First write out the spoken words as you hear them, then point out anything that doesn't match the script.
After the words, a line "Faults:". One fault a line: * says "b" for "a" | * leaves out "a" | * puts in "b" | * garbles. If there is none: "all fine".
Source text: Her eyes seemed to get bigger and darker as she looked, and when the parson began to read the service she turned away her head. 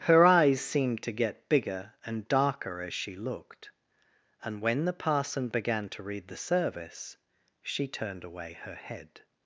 Her eyes seemed to get bigger and darker as she looked, and when the parson began to read the service she turned away her head.
Faults:
all fine